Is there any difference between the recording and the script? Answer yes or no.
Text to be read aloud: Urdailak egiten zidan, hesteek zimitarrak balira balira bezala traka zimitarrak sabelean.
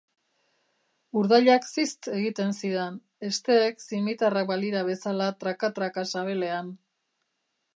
yes